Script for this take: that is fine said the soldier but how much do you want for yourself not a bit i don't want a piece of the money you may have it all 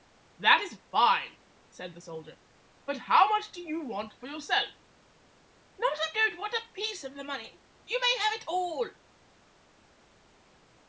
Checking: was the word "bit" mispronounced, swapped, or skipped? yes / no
yes